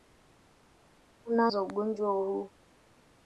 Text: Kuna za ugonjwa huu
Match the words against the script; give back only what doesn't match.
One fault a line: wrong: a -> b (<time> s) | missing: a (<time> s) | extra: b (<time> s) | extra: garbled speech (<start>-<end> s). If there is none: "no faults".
no faults